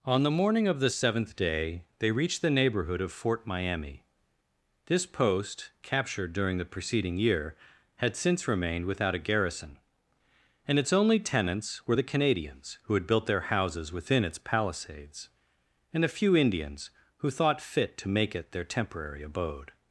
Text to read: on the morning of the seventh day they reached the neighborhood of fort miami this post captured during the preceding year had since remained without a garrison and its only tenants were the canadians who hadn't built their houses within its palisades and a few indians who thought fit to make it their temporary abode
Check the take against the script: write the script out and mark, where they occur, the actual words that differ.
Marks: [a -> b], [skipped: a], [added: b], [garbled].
on the morning of the seventh day they reached the neighborhood of fort miami this post captured during the preceding year had since remained without a garrison and its only tenants were the canadians who [hadn't -> had] built their houses within its palisades and a few indians who thought fit to make it their temporary abode